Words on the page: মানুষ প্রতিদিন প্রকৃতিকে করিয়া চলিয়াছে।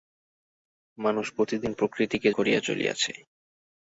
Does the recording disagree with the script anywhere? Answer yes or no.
no